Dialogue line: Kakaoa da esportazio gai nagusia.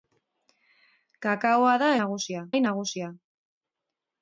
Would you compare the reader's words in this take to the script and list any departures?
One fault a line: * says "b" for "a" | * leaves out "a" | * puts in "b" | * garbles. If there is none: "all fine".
* says "nagusia" for "esportazio"